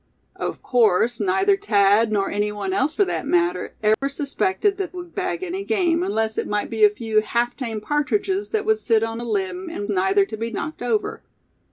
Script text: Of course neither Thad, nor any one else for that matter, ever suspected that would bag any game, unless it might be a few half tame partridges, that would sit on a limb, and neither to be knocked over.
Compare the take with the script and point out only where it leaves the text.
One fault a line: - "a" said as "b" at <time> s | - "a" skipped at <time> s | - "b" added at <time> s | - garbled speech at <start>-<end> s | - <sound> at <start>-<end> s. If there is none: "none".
- dropout at 3.9-4.0 s